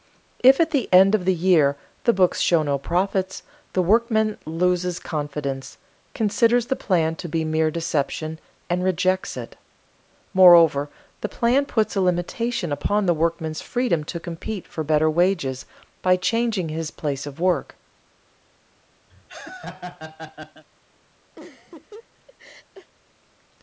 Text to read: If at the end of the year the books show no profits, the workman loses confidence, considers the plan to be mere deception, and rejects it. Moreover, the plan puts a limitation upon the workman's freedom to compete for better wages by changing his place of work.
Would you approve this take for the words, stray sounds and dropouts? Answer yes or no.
no